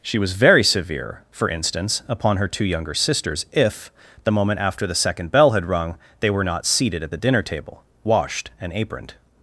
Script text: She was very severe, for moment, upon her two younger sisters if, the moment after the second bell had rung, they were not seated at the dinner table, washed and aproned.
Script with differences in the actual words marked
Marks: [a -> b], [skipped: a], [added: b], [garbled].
She was very severe, for [moment, -> instance] upon her two younger sisters if, the moment after the second bell had rung, they were not seated at the dinner table, washed and aproned.